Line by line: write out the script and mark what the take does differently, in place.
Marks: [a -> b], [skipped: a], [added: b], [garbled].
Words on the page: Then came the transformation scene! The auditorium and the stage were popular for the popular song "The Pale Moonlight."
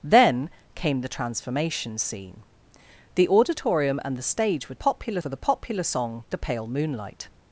Then came the transformation scene! The auditorium and the stage were popular for the popular song "The Pale Moonlight."